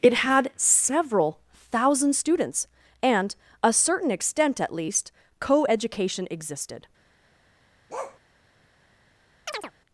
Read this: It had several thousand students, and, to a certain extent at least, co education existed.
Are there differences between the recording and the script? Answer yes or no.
yes